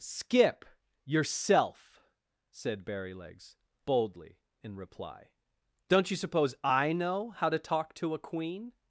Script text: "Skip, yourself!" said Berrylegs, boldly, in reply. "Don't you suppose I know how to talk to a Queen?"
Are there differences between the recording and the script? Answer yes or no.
no